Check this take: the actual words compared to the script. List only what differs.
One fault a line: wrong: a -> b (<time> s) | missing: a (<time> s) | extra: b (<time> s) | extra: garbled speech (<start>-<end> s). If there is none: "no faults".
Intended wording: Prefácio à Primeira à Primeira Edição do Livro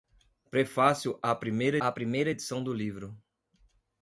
no faults